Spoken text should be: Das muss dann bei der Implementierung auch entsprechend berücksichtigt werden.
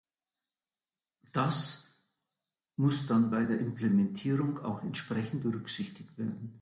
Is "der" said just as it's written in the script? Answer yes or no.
yes